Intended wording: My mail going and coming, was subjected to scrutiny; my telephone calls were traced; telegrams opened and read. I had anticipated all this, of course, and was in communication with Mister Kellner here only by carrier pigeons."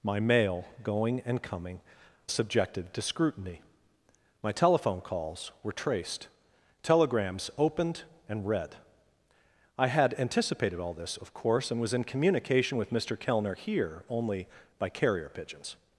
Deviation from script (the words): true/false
true